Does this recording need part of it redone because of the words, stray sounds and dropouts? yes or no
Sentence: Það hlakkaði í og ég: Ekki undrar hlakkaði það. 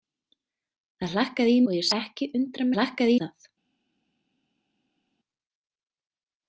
no